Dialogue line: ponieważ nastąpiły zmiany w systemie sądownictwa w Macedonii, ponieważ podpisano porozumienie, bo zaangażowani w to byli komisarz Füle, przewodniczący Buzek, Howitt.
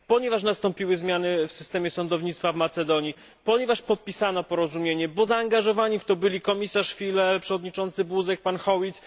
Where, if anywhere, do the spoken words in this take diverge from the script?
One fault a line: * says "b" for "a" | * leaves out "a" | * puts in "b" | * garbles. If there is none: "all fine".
* puts in "pan"